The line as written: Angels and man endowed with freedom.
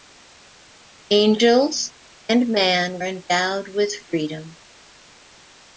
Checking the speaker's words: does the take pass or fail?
pass